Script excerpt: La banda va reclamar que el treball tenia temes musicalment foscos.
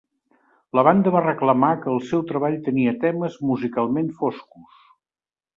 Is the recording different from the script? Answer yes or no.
yes